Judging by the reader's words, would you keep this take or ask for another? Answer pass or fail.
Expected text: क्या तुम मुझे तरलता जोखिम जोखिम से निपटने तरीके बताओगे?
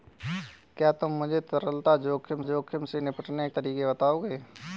pass